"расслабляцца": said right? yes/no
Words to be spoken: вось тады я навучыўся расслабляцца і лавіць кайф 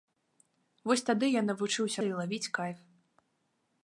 no